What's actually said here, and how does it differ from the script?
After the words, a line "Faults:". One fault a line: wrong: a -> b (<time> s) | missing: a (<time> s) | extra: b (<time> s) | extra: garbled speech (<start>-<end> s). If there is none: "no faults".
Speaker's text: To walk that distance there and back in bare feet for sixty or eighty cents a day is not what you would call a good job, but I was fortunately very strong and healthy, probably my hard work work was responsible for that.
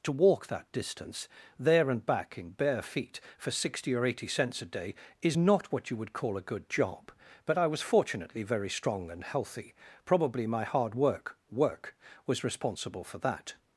To walk that distance there and back in bare feet for sixty or eighty cents a day is not what you would call a good job, but I was fortunately very strong and healthy, probably my hard work work was responsible for that.
Faults:
no faults